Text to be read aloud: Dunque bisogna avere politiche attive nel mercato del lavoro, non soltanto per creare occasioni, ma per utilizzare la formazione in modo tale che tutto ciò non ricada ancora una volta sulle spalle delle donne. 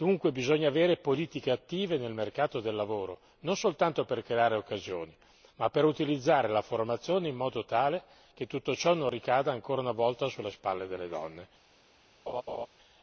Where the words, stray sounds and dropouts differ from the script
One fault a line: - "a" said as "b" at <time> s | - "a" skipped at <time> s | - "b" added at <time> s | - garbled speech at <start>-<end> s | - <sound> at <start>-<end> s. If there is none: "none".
- laugh at 12.3-12.7 s